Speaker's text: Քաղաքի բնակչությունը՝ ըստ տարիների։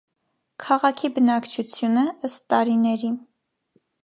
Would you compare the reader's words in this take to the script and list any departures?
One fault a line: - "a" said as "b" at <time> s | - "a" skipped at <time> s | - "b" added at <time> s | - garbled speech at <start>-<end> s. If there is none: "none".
none